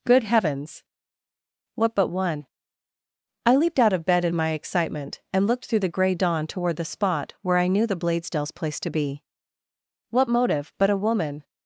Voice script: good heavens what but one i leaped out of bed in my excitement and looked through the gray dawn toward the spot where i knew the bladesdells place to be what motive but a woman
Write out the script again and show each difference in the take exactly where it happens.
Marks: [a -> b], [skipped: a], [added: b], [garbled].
good heavens what but one i leaped out of bed in my excitement and looked through the gray dawn toward the spot where i knew the bladesdells place to be what motive but a woman